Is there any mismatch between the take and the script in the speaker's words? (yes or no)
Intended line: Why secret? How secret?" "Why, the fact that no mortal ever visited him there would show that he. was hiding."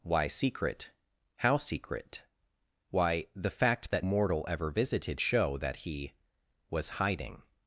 yes